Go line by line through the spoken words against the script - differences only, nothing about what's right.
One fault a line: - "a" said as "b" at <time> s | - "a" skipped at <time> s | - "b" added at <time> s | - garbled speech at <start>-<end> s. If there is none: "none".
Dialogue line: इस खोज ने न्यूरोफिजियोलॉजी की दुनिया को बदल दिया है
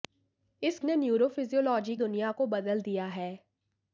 - "खोज" skipped at 0.8 s
- "की" skipped at 2.0 s